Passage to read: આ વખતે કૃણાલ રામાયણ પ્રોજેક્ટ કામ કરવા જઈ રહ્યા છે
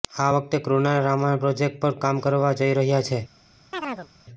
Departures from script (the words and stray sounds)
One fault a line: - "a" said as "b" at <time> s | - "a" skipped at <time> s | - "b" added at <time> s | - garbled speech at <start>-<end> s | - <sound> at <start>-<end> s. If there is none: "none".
- "પર" added at 1.8 s
- chirp at 3.7-4.1 s